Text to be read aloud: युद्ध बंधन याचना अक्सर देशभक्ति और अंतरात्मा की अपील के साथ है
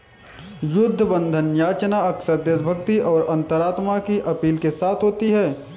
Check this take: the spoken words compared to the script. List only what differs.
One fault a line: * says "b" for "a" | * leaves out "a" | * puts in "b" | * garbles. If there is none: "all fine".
* puts in "होती"